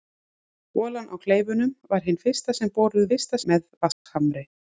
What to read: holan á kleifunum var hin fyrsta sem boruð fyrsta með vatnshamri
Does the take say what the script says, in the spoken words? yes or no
yes